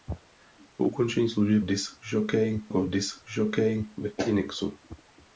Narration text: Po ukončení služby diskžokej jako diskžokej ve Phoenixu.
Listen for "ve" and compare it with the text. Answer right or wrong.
right